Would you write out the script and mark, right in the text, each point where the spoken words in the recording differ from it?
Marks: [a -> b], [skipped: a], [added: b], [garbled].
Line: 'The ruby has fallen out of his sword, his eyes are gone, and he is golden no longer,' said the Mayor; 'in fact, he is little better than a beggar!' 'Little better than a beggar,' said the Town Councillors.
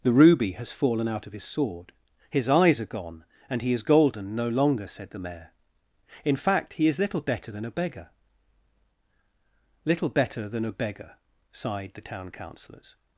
'The ruby has fallen out of his sword, his eyes are gone, and he is golden no longer,' said the Mayor; 'in fact, he is little better than a beggar!' 'Little better than a beggar,' [said -> sighed] the Town Councillors.